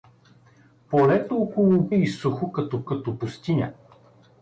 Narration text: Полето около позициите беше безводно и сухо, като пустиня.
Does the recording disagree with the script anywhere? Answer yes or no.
yes